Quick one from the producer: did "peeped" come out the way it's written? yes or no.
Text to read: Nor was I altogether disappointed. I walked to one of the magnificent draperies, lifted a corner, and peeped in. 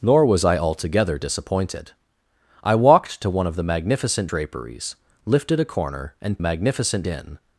no